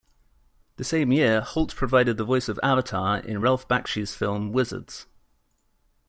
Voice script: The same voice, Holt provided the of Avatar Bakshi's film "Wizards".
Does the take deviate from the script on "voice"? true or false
true